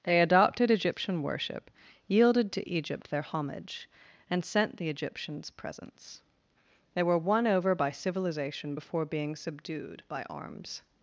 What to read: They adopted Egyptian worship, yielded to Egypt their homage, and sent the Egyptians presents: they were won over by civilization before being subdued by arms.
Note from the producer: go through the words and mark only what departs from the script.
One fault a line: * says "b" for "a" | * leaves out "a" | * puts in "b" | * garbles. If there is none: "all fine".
all fine